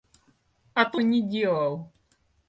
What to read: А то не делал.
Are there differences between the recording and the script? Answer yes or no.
no